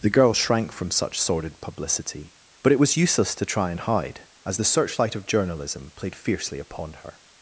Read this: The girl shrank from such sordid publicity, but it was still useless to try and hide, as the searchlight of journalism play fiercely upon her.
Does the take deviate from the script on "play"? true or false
true